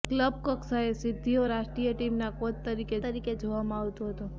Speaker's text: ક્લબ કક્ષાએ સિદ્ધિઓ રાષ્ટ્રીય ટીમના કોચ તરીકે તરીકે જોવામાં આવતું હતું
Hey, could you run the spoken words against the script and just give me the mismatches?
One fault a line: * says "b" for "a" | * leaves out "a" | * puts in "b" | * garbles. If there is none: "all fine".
all fine